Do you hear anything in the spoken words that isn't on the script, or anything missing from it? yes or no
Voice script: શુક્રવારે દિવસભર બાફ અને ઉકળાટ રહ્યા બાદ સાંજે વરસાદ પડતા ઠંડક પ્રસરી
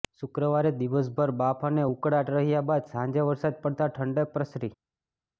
no